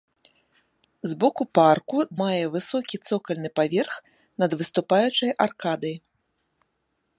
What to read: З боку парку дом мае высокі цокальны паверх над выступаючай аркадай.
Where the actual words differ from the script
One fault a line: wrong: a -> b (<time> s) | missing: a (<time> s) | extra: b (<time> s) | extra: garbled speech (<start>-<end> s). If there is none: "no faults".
missing: дом (2.0 s)